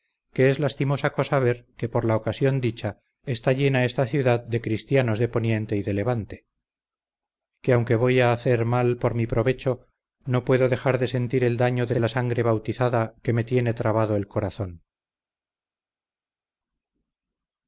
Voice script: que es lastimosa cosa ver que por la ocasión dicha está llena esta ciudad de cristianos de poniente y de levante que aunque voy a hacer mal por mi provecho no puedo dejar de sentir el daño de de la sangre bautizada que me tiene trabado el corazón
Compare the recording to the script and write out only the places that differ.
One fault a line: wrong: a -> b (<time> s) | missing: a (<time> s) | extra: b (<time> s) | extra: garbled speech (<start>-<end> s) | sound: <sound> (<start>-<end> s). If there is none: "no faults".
no faults